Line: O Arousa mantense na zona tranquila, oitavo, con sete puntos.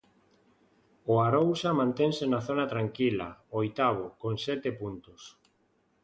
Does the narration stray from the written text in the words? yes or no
no